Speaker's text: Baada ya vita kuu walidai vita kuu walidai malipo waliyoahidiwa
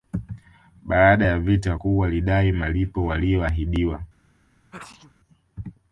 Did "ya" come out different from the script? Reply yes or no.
no